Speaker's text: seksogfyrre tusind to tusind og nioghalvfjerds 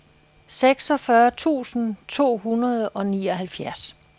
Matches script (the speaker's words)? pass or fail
fail